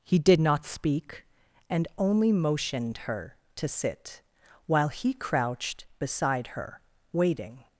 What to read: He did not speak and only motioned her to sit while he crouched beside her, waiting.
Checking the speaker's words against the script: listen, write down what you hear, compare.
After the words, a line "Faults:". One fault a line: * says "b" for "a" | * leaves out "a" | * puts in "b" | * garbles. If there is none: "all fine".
He did not speak and only motioned her to sit while he crouched beside her, waiting.
Faults:
all fine